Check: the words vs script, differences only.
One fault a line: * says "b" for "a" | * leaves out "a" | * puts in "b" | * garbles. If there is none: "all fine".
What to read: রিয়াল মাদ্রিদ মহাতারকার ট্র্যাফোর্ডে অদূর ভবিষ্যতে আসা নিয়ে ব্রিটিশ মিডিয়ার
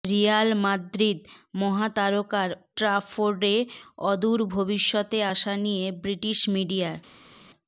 all fine